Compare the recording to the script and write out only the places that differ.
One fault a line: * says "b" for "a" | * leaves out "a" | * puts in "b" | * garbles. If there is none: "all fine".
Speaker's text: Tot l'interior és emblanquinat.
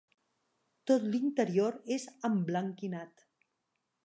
all fine